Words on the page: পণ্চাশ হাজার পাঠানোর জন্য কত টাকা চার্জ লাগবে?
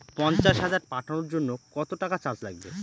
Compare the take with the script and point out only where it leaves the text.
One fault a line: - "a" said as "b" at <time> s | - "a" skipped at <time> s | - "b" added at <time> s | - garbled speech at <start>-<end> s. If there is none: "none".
none